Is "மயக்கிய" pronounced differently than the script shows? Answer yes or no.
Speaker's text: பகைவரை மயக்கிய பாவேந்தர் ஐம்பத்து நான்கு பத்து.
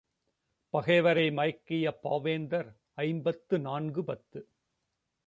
no